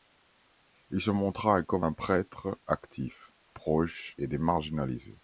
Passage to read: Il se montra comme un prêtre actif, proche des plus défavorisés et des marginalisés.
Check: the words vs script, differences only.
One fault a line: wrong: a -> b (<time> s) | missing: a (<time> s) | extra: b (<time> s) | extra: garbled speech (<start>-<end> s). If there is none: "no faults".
missing: des plus défavorisés (4.2 s)